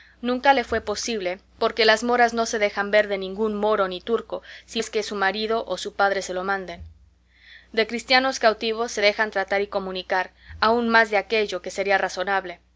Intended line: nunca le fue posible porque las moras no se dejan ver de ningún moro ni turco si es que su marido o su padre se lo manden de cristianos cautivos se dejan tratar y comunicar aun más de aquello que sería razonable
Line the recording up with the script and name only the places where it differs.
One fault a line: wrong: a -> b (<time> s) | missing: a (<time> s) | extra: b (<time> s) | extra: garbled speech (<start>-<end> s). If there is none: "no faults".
no faults